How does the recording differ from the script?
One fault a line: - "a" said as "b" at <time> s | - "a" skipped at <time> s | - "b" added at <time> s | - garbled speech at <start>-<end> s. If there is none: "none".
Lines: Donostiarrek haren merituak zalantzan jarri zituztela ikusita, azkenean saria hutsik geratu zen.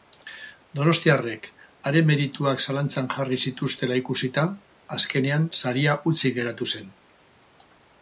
none